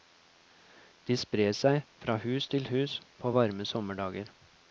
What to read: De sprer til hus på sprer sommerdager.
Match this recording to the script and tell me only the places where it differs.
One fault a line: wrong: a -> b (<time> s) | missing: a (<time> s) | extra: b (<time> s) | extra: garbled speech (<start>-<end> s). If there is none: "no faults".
extra: seg fra hus (1.6 s)
wrong: sprer -> varme (3.3 s)